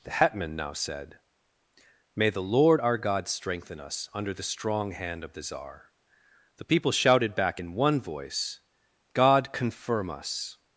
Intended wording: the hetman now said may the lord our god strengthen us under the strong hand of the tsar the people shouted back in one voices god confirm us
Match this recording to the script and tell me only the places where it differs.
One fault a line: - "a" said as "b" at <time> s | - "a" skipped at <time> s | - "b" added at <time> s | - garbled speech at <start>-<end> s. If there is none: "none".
- "voices" said as "voice" at 8.0 s